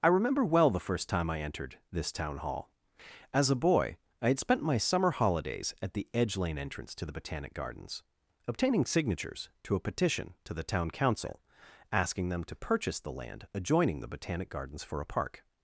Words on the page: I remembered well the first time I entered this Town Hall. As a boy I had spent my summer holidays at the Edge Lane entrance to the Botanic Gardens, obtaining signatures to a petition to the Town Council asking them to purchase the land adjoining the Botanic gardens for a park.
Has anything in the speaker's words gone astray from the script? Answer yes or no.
yes